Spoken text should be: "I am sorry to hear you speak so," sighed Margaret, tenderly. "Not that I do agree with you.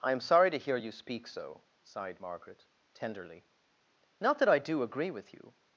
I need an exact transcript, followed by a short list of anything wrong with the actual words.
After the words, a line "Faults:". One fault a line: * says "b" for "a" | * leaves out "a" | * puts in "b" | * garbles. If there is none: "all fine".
"I am sorry to hear you speak so," sighed Margaret, tenderly. "Not that I do agree with you.
Faults:
all fine